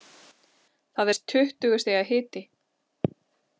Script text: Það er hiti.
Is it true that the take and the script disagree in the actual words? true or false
true